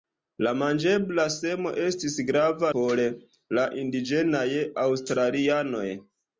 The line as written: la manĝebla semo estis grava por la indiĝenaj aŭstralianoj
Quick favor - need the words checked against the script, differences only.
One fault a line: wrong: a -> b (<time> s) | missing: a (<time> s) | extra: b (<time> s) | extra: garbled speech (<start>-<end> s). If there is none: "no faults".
no faults